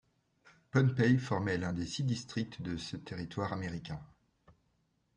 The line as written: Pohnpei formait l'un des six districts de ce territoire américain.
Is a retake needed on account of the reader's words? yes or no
no